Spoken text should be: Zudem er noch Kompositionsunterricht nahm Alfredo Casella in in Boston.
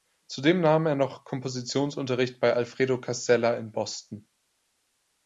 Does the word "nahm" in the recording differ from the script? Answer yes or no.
yes